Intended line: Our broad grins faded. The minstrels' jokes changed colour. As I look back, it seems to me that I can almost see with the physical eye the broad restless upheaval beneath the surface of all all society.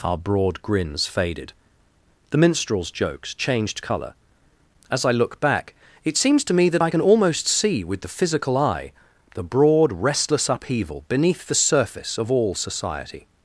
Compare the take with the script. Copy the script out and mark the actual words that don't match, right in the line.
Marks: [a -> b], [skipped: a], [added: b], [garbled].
Our broad grins faded. The minstrels' jokes changed colour. As I look back, it seems to me that I can almost see with the physical eye the broad restless upheaval beneath the surface of all [skipped: all] society.